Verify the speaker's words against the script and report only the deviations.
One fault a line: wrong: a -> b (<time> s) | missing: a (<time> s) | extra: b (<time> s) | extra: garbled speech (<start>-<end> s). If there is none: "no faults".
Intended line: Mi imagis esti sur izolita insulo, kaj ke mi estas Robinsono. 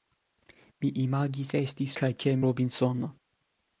missing: sur izolita insulo (1.9 s)
missing: mi estas (2.4 s)